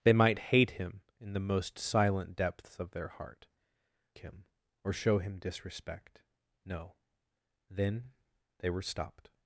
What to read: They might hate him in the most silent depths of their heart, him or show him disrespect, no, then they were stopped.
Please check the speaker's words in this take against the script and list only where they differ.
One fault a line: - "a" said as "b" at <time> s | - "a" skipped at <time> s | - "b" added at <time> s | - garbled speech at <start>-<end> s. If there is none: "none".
none